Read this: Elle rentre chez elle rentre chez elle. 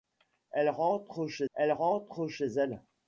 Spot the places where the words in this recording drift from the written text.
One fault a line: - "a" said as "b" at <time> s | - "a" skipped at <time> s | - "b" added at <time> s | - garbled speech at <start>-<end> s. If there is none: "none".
none